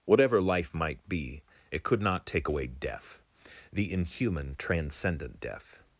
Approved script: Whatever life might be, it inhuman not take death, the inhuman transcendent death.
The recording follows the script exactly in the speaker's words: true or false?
false